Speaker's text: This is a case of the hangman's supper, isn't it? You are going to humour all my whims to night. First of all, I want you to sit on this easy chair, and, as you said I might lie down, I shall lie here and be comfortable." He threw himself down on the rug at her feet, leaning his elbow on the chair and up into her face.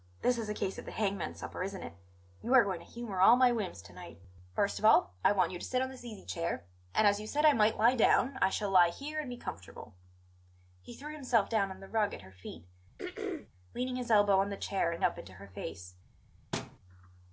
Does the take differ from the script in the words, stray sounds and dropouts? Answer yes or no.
yes